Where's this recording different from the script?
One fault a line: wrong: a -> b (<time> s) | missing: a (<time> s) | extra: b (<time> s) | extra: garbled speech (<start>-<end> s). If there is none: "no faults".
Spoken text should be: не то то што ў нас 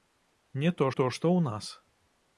no faults